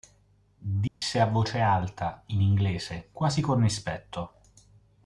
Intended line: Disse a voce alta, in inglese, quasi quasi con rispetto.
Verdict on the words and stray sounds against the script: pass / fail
fail